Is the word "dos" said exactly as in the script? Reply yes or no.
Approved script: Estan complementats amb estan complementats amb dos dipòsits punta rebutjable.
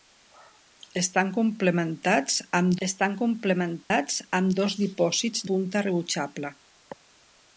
yes